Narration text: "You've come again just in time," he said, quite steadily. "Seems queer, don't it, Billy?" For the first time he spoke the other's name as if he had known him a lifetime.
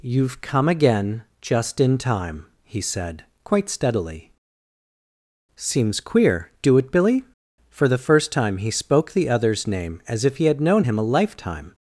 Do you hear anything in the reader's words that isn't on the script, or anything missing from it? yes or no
yes